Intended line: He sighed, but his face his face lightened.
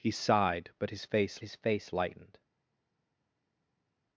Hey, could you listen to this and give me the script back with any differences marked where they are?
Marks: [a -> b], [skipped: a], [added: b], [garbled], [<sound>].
He sighed, but his face his face lightened.